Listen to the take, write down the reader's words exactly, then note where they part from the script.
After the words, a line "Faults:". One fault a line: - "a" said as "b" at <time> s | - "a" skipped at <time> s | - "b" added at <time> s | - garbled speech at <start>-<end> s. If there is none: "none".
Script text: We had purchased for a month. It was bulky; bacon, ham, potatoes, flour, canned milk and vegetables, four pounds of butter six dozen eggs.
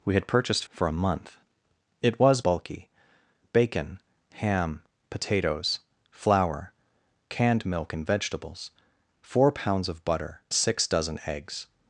We had purchased for a month. It was bulky; bacon, ham, potatoes, flour, canned milk and vegetables, four pounds of butter six dozen eggs.
Faults:
none